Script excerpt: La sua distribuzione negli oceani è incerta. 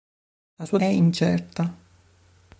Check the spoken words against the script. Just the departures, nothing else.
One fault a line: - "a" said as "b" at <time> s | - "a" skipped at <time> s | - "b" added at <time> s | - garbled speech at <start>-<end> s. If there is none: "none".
- "distribuzione negli oceani" skipped at 0.8 s